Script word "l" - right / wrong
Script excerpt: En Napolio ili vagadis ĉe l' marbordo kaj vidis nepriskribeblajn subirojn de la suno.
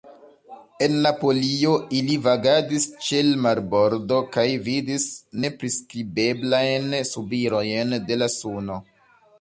right